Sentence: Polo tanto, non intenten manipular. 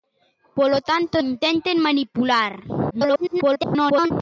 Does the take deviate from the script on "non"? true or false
true